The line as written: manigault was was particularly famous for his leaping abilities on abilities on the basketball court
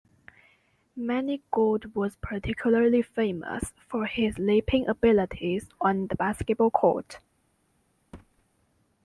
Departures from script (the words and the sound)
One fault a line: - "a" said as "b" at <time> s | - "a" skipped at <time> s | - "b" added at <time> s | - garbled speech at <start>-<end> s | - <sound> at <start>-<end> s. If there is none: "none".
- "was" skipped at 2.1 s
- "abilities on" skipped at 6.1 s
- thud at 8.1-8.4 s